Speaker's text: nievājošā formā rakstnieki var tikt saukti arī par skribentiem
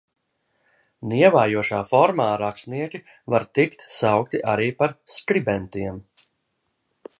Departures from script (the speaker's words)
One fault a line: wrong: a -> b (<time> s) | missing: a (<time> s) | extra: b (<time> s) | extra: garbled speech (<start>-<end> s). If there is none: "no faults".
no faults